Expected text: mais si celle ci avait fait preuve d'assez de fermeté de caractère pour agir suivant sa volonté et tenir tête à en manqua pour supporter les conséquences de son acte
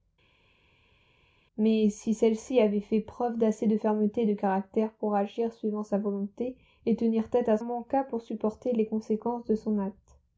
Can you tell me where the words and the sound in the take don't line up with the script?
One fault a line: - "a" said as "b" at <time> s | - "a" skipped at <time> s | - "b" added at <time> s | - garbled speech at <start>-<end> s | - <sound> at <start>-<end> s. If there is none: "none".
none